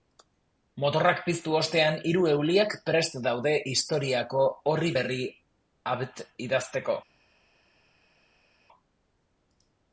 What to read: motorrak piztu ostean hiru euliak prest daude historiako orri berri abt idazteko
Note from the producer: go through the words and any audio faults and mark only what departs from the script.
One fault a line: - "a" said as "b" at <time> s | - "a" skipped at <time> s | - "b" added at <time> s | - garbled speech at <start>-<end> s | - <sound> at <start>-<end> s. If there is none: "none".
none